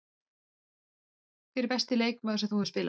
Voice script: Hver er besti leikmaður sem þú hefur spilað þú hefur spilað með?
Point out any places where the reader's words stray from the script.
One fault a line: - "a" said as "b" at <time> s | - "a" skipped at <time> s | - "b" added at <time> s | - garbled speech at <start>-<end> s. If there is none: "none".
- "þú hefur spilað" skipped at 2.8 s